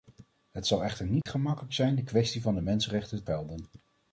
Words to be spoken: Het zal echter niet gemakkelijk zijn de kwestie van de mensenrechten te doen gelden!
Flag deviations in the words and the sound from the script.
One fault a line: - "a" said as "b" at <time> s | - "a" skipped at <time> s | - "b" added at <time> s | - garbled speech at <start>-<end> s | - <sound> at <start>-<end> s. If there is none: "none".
- dropout at 1.2-1.3 s
- "te doen" skipped at 3.2 s